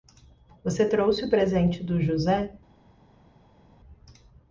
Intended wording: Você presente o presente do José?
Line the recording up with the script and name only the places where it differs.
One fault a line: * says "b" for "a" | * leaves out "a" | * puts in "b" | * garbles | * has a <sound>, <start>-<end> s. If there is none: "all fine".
* says "trouxe" for "presente"